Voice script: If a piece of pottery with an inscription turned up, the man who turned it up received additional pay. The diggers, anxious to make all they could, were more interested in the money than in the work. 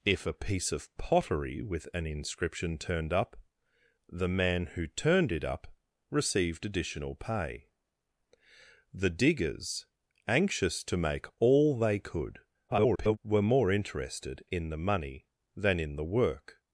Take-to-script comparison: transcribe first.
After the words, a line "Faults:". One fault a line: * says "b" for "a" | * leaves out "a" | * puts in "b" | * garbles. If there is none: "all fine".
If a piece of pottery with an inscription turned up, the man who turned it up received additional pay. The diggers, anxious to make all they could, [garbled] were more interested in the money than in the work.
Faults:
* garbles